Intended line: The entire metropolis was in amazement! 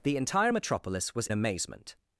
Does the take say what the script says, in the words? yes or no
no